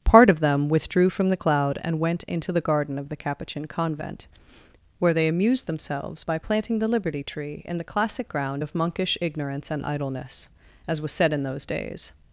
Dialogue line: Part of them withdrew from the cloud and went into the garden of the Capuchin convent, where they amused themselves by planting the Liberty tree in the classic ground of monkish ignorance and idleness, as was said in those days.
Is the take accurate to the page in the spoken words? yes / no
yes